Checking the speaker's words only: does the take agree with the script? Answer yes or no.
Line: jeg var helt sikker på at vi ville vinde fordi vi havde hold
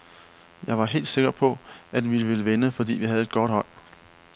no